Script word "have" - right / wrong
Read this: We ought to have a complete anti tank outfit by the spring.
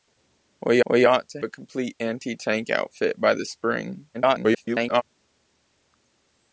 wrong